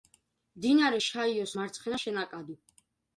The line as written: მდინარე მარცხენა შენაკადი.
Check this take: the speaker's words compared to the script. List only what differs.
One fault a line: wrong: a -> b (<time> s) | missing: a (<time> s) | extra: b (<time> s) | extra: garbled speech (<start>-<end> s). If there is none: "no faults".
extra: შაიოს (1.0 s)